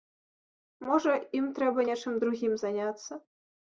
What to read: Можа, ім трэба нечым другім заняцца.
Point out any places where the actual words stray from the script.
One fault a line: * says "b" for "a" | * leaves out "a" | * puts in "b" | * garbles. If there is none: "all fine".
all fine